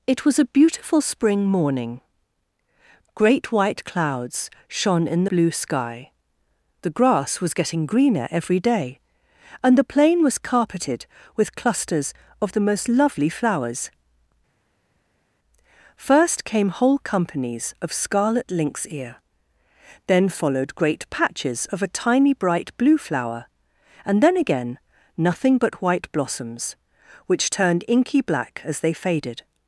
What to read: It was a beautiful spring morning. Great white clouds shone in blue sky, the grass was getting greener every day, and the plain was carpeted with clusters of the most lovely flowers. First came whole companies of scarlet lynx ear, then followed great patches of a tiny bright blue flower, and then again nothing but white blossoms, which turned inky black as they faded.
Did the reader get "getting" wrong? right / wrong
right